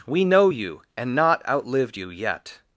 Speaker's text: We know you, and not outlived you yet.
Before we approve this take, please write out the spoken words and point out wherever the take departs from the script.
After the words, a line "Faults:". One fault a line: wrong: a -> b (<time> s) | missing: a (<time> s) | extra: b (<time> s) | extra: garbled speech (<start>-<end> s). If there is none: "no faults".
We know you, and not outlived you yet.
Faults:
no faults